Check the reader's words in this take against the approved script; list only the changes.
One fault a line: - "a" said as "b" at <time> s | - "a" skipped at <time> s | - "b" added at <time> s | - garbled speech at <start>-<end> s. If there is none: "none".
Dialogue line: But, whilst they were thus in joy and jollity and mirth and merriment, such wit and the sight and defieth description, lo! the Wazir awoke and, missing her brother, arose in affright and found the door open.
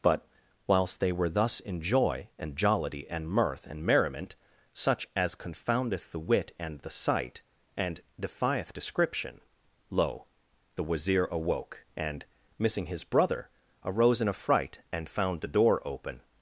- "as confoundeth the" added at 5.2 s
- "her" said as "his" at 12.9 s